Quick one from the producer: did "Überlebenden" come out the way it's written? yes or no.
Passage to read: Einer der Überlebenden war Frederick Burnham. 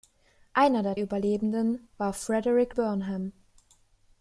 yes